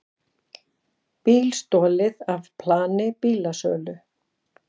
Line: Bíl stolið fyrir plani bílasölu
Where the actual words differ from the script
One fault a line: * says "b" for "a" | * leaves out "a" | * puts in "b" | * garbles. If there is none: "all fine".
* says "af" for "fyrir"